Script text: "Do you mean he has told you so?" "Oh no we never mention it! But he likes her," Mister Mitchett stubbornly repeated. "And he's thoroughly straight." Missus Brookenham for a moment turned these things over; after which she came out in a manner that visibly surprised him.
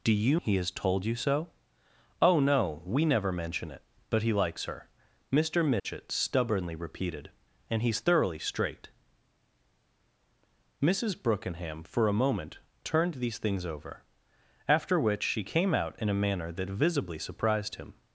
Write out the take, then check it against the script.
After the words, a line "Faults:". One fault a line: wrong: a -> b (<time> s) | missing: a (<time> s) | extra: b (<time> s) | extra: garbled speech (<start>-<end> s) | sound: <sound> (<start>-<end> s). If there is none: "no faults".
"Do you he has told you so?" "Oh no we never mention it! But he likes her," Mister Mitchett stubbornly repeated. "And he's thoroughly straight." Missus Brookenham for a moment turned these things over; after which she came out in a manner that visibly surprised him.
Faults:
missing: mean (0.4 s)
sound: dropout (5.8-5.8 s)